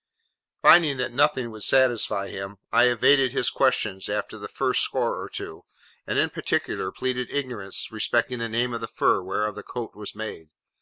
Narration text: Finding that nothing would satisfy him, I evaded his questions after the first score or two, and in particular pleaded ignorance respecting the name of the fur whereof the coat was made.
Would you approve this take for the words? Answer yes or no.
yes